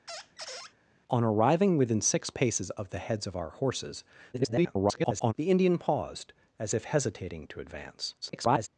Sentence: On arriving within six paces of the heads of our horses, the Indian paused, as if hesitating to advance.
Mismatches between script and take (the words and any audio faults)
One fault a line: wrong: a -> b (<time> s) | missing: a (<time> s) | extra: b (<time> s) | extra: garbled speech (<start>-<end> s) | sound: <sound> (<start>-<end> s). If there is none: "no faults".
sound: squeak (0.1-0.7 s)
extra: garbled speech (4.3-5.3 s)
extra: garbled speech (8.2-8.7 s)